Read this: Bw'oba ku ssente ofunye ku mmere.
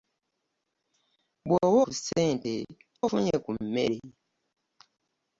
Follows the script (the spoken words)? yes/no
yes